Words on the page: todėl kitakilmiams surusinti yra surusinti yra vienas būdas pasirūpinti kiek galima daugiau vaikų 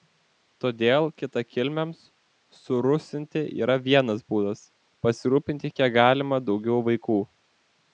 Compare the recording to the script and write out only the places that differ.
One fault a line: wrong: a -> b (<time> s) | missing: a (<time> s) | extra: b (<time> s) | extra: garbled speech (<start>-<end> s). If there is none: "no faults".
missing: surusinti yra (3.8 s)